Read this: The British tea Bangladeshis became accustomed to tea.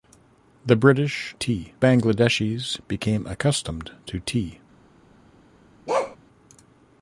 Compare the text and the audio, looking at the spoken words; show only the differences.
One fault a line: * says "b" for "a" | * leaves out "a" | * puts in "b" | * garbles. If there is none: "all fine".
all fine